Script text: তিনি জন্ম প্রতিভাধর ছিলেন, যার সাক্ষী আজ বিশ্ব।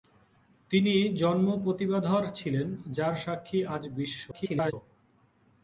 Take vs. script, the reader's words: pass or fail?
fail